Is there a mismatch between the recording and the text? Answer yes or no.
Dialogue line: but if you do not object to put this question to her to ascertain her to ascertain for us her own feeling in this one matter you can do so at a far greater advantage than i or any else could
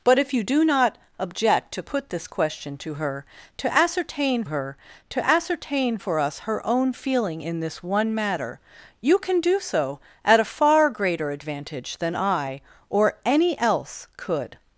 no